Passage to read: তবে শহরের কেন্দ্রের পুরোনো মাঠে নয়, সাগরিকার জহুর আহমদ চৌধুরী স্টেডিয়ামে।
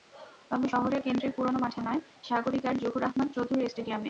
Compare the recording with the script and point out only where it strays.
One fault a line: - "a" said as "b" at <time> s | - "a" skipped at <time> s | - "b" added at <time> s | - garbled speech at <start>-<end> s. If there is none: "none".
none